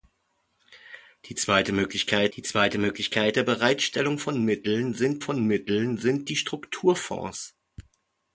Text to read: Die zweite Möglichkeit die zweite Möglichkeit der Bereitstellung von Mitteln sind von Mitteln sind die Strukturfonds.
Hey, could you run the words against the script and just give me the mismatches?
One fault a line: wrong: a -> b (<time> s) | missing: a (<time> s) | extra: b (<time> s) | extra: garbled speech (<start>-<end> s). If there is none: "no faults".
no faults